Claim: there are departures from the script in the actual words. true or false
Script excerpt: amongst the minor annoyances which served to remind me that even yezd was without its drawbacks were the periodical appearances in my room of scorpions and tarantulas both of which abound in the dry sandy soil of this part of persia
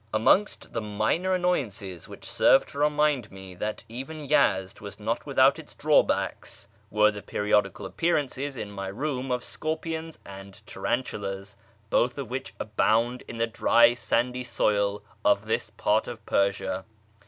true